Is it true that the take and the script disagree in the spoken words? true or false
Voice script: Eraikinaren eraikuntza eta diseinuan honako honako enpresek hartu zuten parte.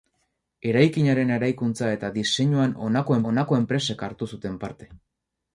false